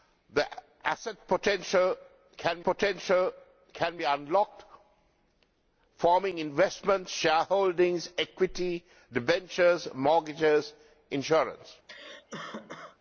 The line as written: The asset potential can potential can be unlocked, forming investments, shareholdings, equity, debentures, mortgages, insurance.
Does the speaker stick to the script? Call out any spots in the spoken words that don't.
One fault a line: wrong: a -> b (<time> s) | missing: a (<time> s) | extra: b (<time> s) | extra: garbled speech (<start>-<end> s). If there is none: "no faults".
no faults